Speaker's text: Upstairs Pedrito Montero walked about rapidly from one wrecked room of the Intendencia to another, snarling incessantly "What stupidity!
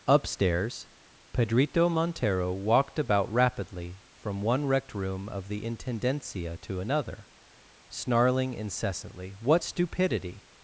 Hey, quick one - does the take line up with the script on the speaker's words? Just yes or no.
yes